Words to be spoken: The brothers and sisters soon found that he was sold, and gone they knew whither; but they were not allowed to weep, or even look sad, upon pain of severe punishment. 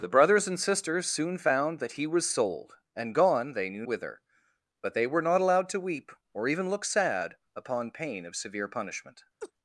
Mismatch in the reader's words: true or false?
false